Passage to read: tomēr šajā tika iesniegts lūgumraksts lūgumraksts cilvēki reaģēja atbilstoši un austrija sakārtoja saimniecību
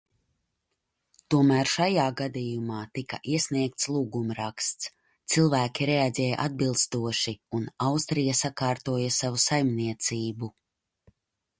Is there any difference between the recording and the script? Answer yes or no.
yes